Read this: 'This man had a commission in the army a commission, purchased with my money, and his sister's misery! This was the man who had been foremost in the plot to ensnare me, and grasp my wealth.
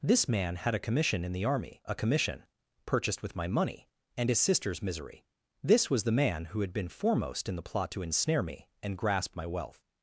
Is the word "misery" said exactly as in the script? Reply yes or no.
yes